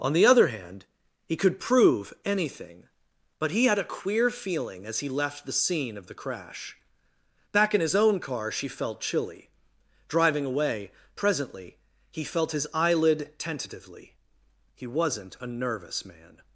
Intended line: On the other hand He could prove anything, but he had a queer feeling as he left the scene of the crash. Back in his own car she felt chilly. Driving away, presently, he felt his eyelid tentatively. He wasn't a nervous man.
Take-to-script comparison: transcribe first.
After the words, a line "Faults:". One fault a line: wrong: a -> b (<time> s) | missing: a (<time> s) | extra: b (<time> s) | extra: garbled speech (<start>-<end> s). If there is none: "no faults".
On the other hand He could prove anything, but he had a queer feeling as he left the scene of the crash. Back in his own car she felt chilly. Driving away, presently, he felt his eyelid tentatively. He wasn't a nervous man.
Faults:
no faults